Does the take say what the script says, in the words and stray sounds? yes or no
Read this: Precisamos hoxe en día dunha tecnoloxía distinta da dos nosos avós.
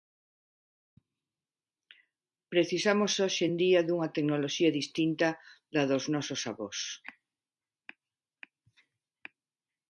yes